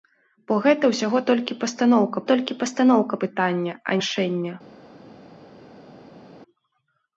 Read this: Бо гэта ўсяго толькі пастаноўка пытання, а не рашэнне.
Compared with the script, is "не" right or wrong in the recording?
wrong